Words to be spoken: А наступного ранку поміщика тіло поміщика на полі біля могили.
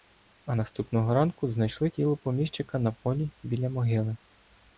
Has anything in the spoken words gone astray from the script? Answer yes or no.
yes